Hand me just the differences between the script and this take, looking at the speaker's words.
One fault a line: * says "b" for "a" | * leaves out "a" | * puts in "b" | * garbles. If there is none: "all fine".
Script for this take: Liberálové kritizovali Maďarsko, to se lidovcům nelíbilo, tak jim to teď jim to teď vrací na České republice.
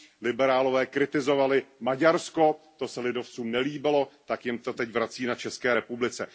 * leaves out "jim to teď"